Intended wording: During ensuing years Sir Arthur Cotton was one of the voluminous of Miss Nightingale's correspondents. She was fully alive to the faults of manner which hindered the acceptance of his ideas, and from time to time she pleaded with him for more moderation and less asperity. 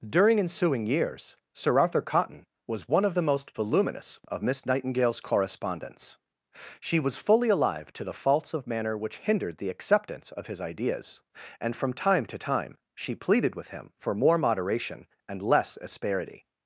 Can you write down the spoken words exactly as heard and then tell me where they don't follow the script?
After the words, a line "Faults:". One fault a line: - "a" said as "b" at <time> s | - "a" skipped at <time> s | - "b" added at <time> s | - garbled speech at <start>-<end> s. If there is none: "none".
During ensuing years Sir Arthur Cotton was one of the most voluminous of Miss Nightingale's correspondents. She was fully alive to the faults of manner which hindered the acceptance of his ideas, and from time to time she pleaded with him for more moderation and less asperity.
Faults:
- "most" added at 3.2 s